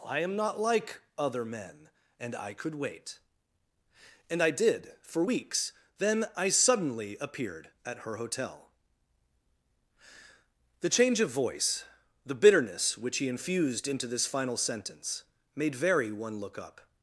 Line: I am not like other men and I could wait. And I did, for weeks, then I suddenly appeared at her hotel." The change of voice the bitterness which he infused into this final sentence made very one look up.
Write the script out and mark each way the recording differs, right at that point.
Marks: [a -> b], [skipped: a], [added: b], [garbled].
I am not like other men and I could wait. And I did, for weeks, then I suddenly appeared at her hotel." The change of voice the bitterness which he infused into this final sentence made very one look up.